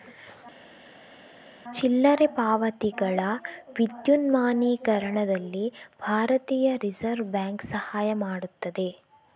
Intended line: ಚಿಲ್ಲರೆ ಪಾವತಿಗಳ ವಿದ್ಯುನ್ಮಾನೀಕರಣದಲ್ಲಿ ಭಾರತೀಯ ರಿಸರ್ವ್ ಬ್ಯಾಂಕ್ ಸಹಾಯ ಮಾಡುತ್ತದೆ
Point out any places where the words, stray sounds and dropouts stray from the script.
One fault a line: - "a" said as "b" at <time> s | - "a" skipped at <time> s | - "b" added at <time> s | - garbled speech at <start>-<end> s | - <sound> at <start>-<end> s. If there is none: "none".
none